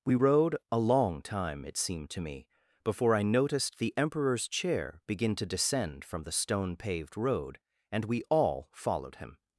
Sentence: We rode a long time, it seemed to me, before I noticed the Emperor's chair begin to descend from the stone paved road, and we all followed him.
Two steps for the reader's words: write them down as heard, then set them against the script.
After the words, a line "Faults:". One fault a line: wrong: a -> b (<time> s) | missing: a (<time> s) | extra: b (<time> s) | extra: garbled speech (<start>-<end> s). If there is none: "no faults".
We rode a long time, it seemed to me, before I noticed the Emperor's chair begin to descend from the stone paved road, and we all followed him.
Faults:
no faults